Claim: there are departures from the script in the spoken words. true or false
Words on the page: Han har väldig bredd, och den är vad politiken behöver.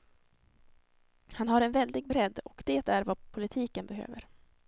true